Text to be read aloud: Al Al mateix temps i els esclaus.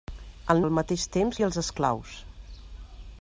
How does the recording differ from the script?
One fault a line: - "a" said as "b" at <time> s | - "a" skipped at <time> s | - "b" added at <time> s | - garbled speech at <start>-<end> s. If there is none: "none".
none